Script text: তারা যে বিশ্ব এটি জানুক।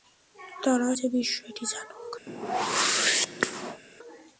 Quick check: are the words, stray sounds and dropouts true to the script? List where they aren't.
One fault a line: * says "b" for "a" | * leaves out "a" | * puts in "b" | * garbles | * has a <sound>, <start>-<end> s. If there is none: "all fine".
* has a whoosh, 2.3-3.8 s